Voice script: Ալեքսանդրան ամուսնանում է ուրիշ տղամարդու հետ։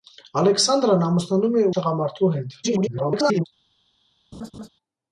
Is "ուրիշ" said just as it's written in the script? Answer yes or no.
no